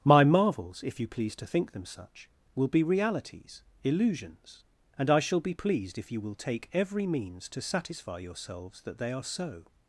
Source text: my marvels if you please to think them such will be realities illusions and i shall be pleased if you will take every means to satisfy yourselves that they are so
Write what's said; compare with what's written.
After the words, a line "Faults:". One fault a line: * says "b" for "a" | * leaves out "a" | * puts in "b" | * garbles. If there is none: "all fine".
my marvels if you please to think them such will be realities illusions and i shall be pleased if you will take every means to satisfy yourselves that they are so
Faults:
all fine